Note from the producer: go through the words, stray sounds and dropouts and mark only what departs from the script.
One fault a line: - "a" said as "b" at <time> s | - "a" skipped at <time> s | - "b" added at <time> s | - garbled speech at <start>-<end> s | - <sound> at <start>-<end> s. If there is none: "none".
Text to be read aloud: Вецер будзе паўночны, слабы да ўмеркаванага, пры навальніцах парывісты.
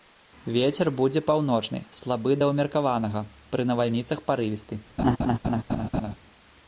- laugh at 5.0-6.2 s